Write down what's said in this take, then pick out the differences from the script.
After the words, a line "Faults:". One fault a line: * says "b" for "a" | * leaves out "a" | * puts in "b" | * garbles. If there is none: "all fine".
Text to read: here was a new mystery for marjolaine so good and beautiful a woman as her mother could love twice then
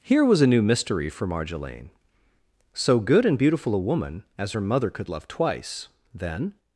here was a new mystery for marjolaine so good and beautiful a woman as her mother could love twice then
Faults:
all fine